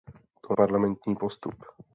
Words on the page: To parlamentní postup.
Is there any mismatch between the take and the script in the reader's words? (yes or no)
no